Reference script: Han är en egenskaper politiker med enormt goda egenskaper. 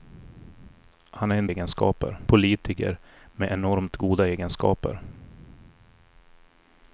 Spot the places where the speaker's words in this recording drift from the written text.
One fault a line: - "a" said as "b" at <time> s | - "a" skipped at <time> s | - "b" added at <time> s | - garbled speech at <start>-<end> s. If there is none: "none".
none